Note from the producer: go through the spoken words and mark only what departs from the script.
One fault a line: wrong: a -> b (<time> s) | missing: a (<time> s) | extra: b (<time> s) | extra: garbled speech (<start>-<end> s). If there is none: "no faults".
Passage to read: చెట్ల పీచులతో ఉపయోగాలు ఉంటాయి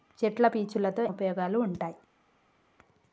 no faults